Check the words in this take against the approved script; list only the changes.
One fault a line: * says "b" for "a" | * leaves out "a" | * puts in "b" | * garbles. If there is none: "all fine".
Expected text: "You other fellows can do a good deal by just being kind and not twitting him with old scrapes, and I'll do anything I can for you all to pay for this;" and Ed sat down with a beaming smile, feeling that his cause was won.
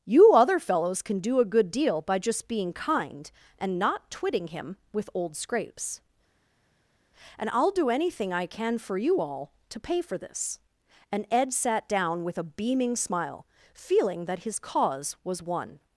all fine